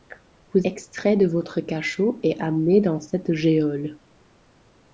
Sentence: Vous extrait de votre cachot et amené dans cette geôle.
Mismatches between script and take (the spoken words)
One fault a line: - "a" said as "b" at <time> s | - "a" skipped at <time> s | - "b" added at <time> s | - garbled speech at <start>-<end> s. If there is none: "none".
none